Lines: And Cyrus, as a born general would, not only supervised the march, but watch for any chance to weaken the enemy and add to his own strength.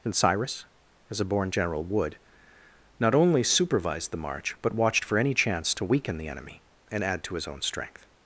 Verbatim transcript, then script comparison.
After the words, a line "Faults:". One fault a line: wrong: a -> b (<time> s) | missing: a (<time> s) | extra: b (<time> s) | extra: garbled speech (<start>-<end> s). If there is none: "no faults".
And Cyrus, as a born general would, not only supervised the march, but watched for any chance to weaken the enemy and add to his own strength.
Faults:
wrong: watch -> watched (4.8 s)